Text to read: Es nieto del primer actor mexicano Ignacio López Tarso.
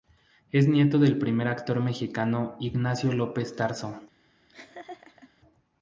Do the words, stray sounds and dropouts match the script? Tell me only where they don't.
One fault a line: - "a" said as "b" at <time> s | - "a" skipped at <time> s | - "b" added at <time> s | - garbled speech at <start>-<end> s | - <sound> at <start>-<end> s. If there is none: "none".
- laugh at 4.5-5.3 s